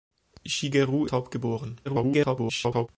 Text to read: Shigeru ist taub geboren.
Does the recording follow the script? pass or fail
fail